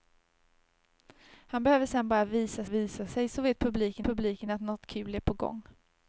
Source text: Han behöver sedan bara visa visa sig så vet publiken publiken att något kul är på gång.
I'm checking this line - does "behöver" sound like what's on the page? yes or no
yes